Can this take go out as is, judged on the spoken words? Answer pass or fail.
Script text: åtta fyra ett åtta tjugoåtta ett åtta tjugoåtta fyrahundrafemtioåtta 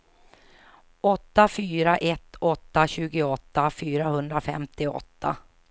fail